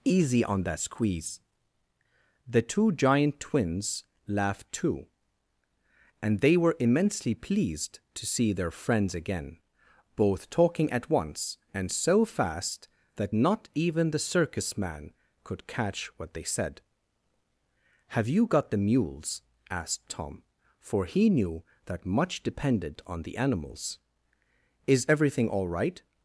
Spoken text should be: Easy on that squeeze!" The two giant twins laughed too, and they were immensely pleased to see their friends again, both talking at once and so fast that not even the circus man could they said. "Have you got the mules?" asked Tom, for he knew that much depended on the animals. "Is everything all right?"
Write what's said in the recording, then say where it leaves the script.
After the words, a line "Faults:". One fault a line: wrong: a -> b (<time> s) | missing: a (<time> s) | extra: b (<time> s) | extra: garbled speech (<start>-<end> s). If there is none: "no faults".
Easy on that squeeze!" The two giant twins laughed too, and they were immensely pleased to see their friends again, both talking at once and so fast that not even the circus man could catch what they said. "Have you got the mules?" asked Tom, for he knew that much depended on the animals. "Is everything all right?"
Faults:
extra: catch what (15.7 s)